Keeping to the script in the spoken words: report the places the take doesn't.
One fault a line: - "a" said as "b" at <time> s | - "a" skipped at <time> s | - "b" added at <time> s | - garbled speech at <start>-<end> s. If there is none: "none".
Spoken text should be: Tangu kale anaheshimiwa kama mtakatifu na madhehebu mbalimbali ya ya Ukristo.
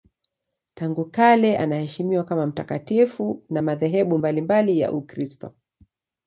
- "ya" skipped at 4.9 s